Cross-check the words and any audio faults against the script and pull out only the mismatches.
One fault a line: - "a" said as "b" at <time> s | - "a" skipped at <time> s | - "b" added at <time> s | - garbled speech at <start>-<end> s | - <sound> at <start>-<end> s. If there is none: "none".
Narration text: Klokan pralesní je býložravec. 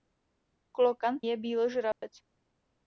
- "pralesní" skipped at 1.2 s
- dropout at 1.9-2.0 s